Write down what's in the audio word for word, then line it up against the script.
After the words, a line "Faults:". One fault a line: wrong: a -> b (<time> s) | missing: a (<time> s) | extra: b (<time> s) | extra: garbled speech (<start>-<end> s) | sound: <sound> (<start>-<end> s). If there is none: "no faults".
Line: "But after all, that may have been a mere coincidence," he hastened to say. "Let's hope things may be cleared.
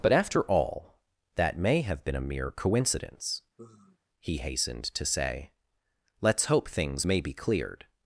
"But after all, that may have been a mere coincidence," he hastened to say. "Let's hope things may be cleared.
Faults:
sound: sigh (3.6-4.0 s)